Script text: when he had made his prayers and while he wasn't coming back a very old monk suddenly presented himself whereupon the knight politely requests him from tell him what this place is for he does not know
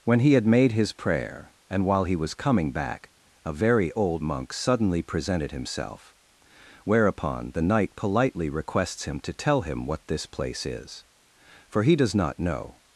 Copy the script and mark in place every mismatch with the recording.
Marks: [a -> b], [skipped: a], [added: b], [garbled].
when he had made his [prayers -> prayer] and while he [wasn't -> was] coming back a very old monk suddenly presented himself whereupon the knight politely requests him [from -> to] tell him what this place is for he does not know